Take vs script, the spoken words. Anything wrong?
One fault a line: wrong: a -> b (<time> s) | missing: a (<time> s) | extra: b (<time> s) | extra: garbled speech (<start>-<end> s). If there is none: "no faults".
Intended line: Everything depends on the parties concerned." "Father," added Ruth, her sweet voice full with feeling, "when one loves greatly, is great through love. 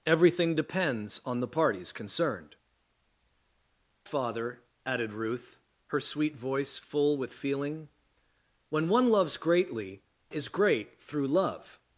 no faults